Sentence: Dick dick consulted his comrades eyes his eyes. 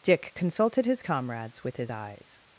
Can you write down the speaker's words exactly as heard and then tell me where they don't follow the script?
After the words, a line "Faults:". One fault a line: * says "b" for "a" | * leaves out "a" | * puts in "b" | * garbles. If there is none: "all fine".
Dick consulted his comrades with his eyes.
Faults:
* leaves out "dick"
* says "with" for "eyes"